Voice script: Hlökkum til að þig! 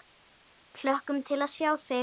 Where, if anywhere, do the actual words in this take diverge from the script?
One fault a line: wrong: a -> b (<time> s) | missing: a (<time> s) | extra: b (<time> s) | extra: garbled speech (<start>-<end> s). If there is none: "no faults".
extra: sjá (1.6 s)